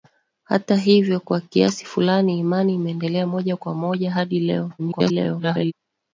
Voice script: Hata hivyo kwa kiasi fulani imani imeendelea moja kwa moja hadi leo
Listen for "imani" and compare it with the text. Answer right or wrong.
right